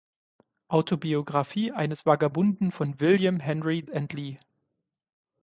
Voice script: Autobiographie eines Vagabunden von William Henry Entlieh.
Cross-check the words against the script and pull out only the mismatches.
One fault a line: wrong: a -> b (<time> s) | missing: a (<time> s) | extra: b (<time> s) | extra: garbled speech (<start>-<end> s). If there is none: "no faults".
no faults